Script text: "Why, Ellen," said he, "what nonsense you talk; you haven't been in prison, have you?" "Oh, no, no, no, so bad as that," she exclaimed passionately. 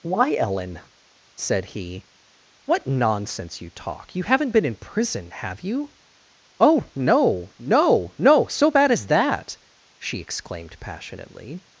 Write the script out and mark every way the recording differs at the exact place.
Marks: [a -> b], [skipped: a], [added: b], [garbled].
"Why, Ellen," said he, "what nonsense you talk; you haven't been in prison, have you?" "Oh, no, no, no, so bad as that," she exclaimed passionately.